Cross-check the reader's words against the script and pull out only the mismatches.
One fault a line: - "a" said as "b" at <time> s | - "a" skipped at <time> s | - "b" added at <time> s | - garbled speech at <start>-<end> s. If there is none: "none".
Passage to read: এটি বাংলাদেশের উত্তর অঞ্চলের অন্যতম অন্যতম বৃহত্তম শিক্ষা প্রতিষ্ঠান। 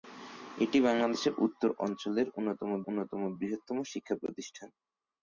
none